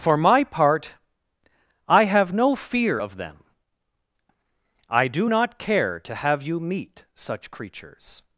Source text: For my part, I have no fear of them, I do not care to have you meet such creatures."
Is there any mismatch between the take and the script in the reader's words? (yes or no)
no